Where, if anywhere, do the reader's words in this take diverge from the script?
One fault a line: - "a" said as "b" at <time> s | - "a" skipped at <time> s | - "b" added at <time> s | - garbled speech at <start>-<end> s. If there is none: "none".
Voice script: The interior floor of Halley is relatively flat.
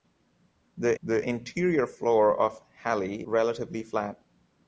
- "the" added at 1.0 s
- "is" skipped at 3.3 s